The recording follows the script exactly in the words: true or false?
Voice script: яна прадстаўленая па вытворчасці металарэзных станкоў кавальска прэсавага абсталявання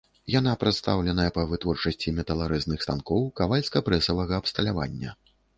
true